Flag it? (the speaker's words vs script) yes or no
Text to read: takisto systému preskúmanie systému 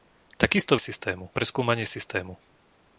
no